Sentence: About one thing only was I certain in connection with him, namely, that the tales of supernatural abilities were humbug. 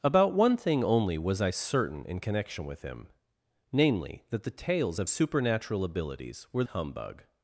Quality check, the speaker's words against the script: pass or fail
pass